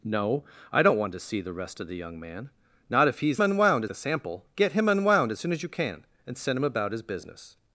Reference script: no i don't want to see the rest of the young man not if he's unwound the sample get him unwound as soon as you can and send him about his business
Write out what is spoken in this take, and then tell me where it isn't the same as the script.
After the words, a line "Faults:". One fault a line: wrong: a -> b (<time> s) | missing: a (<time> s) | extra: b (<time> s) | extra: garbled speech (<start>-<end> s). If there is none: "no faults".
no i don't want to see the rest of the young man not if he's unwound the sample get him unwound as soon as you can and send him about his business
Faults:
no faults